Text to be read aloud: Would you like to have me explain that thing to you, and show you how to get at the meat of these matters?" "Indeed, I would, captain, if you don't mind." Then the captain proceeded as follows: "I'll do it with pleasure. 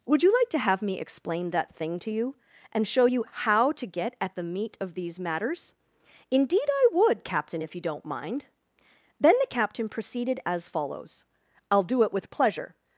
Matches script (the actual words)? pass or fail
pass